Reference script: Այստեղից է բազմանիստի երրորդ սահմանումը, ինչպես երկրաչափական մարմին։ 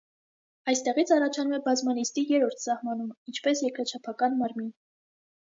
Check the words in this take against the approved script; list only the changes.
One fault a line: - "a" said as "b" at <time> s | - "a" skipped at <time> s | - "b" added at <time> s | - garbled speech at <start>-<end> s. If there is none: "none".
- "առաջանում" added at 1.2 s